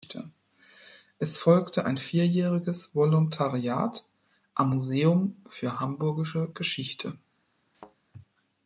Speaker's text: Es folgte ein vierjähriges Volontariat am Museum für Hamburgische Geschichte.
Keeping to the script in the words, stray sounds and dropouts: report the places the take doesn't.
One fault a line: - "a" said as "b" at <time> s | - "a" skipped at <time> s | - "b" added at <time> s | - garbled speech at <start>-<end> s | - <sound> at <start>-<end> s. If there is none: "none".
- thud at 7.7-8.0 s